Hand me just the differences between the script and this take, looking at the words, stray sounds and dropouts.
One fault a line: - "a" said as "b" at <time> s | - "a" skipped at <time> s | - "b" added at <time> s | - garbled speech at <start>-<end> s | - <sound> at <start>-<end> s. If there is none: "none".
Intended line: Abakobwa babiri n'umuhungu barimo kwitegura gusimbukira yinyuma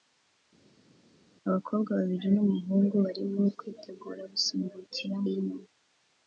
none